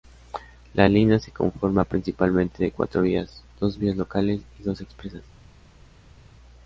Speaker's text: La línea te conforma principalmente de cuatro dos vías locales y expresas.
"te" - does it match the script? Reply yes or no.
no